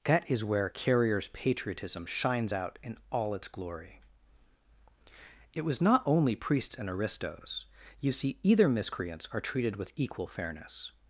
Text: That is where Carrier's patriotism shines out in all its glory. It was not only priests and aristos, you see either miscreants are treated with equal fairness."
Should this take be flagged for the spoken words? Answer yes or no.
no